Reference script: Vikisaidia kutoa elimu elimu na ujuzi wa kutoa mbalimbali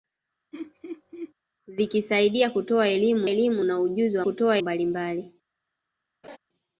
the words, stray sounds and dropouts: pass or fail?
fail